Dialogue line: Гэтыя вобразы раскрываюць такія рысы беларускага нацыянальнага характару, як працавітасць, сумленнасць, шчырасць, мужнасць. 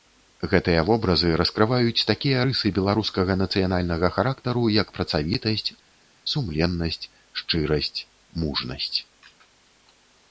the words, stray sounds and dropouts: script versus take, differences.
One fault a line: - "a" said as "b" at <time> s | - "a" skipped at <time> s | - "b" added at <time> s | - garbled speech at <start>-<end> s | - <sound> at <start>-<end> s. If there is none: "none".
none